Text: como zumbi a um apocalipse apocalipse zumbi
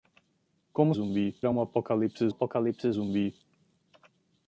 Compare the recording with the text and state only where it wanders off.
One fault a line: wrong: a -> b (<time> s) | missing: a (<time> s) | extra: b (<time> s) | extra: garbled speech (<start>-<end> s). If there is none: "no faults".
no faults